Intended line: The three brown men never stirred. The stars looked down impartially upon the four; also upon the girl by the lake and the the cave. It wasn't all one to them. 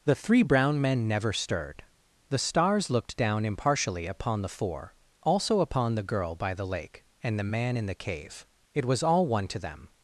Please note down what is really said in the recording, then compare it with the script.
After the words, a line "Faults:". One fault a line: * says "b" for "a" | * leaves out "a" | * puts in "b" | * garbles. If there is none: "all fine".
The three brown men never stirred. The stars looked down impartially upon the four; also upon the girl by the lake and the man in the cave. It was all one to them.
Faults:
* puts in "man in"
* says "was" for "wasn't"